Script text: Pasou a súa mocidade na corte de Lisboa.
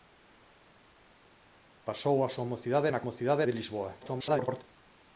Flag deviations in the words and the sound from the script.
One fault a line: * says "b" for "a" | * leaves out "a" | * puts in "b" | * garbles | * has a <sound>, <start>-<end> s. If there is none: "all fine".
* says "mocidade" for "corte"
* garbles